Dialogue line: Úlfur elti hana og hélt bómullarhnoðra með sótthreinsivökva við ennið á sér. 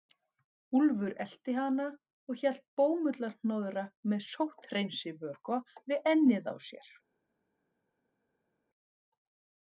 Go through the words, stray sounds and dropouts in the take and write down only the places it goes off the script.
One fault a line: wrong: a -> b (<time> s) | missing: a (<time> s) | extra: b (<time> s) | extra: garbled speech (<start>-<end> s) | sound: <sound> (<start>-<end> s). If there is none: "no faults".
no faults